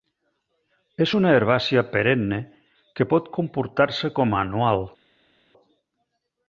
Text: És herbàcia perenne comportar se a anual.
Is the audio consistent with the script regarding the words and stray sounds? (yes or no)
no